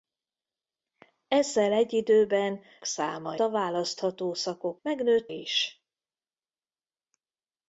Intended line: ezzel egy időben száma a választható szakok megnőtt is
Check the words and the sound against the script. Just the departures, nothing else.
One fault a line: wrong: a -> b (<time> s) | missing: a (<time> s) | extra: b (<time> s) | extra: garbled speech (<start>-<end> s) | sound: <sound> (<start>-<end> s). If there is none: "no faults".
no faults